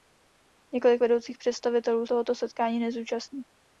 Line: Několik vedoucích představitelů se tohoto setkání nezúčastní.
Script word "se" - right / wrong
wrong